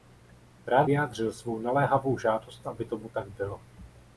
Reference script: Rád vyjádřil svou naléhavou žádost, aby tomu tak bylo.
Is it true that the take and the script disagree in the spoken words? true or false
false